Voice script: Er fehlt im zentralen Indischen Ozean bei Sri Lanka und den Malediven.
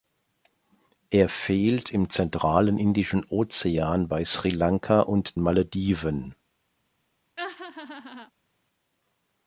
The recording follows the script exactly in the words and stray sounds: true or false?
false